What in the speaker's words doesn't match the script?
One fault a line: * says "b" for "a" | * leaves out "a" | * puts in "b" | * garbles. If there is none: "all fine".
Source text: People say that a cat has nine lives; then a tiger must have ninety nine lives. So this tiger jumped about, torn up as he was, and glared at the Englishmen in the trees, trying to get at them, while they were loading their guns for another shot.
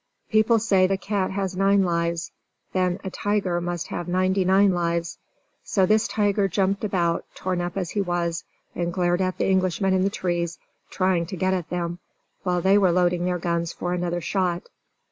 * leaves out "that"